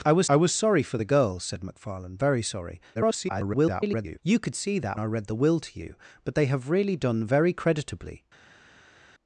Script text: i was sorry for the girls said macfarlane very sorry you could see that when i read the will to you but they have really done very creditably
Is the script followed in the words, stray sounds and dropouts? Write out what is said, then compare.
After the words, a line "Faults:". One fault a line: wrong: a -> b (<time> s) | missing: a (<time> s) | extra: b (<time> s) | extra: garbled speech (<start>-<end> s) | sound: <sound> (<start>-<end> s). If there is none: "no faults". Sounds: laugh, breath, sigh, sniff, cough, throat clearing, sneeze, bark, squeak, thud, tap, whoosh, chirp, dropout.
i was i was sorry for the girls said macfarlane very sorry [garbled] you could see that i read the will to you but they have really done very creditably
Faults:
extra: i was (0.3 s)
extra: garbled speech (2.9-4.2 s)
missing: when (5.0 s)